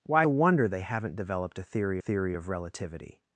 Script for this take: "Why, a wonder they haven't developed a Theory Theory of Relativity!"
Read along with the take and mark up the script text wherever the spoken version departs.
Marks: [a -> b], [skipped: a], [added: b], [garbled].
"Why, a wonder they haven't developed a Theory Theory of Relativity!"